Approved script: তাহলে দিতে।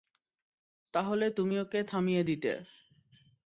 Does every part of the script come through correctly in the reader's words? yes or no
no